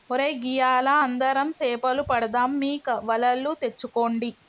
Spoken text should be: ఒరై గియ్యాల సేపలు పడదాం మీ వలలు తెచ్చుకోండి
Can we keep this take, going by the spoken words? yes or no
no